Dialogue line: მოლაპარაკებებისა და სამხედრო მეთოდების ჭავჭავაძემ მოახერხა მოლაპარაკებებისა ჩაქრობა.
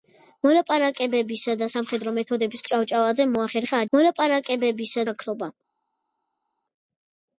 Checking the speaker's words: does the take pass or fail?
pass